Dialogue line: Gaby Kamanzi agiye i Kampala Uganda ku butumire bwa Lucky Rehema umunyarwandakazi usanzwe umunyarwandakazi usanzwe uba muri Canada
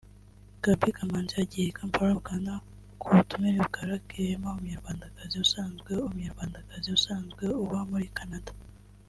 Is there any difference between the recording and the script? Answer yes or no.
no